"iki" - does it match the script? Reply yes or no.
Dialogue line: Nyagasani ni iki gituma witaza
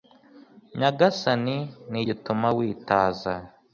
no